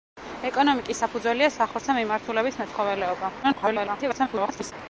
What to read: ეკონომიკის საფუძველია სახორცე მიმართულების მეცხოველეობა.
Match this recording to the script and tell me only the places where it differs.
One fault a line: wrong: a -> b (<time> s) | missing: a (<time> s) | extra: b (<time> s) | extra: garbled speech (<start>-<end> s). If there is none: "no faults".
extra: garbled speech (3.4-4.7 s)